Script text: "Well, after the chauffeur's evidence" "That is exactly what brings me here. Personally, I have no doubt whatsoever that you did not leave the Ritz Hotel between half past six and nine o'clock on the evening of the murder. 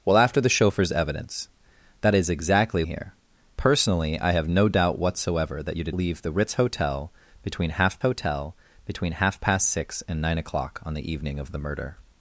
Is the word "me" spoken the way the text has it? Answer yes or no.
no